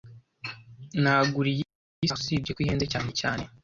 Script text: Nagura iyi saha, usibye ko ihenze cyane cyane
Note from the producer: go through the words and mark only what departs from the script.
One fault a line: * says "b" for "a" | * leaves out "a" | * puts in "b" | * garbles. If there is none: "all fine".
all fine